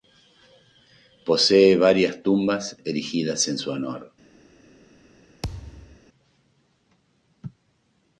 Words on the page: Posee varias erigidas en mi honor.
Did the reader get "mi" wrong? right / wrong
wrong